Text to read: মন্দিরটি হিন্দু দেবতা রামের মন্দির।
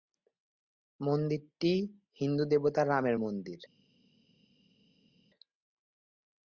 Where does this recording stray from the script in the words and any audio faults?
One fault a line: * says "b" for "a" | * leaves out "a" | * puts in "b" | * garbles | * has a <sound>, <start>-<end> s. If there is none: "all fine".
all fine